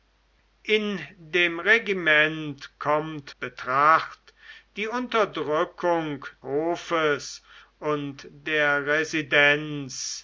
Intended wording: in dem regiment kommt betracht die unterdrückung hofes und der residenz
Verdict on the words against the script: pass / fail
pass